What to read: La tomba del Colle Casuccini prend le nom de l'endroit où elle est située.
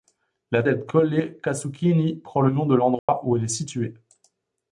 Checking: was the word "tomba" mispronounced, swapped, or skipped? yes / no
yes